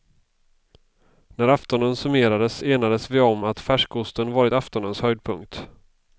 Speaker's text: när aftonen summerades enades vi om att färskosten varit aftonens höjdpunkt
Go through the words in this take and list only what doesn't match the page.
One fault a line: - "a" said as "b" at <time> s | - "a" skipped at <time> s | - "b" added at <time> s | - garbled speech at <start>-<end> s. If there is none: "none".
none